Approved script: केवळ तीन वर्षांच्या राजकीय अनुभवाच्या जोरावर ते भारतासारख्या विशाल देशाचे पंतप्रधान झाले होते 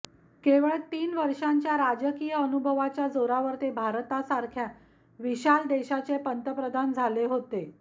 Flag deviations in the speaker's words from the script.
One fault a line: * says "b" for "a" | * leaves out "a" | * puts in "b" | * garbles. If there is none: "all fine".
all fine